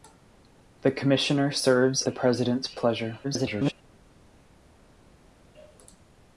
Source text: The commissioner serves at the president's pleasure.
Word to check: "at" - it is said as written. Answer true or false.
false